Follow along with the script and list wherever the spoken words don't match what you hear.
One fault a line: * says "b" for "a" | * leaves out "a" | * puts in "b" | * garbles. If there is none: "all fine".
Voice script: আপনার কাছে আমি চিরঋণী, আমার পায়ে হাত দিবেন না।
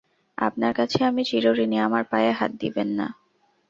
all fine